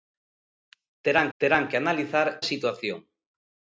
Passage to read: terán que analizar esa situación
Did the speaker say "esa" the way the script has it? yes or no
no